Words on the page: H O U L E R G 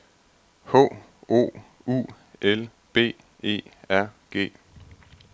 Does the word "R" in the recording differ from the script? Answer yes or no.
no